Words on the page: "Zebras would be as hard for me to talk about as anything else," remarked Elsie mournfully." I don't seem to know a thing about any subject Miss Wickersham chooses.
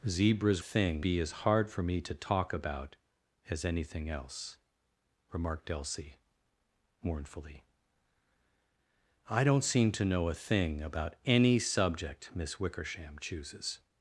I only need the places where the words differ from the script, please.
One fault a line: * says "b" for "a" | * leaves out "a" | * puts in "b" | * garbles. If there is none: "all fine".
* says "thing" for "would"